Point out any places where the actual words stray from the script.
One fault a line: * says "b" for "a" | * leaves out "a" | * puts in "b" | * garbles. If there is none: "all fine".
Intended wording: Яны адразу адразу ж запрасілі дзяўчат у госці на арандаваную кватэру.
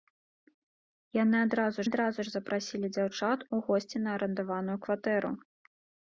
all fine